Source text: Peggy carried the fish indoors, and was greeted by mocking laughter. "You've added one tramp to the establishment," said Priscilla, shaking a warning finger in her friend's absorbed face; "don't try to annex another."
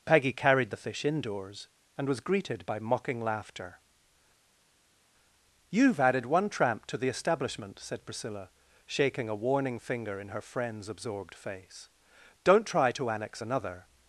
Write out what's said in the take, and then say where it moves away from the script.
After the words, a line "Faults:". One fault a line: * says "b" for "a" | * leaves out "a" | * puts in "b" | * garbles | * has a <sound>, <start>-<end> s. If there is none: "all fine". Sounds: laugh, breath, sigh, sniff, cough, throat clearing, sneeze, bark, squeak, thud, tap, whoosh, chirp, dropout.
Peggy carried the fish indoors, and was greeted by mocking laughter. "You've added one tramp to the establishment," said Priscilla, shaking a warning finger in her friend's absorbed face; "don't try to annex another."
Faults:
all fine